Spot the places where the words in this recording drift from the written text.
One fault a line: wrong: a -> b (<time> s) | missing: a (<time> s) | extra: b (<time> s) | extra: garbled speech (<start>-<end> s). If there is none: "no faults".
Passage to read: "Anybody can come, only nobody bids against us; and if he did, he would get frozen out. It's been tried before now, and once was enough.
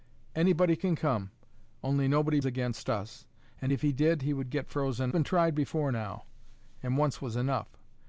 missing: bids (2.4 s)
missing: out It's (5.1 s)